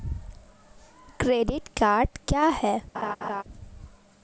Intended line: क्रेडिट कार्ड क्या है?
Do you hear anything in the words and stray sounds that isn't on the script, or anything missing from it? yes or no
yes